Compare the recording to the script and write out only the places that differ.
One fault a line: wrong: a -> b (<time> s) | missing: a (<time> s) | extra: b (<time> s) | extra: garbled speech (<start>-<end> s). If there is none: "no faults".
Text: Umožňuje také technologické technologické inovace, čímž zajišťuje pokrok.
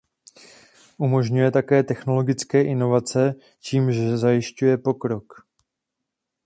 missing: technologické (2.6 s)